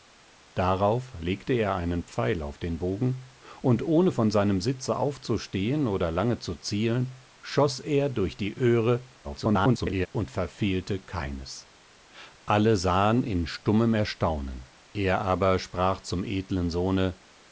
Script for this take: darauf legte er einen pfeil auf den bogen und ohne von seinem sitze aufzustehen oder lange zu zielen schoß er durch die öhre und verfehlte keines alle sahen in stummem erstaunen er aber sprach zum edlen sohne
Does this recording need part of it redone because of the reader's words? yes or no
yes